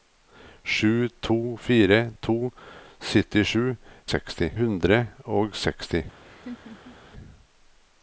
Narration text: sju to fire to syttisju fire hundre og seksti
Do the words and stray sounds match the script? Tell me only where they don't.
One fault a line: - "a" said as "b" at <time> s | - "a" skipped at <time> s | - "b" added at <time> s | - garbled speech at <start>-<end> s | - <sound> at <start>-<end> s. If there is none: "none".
- "fire" said as "seksti" at 4.1 s
- laugh at 6.2-7.0 s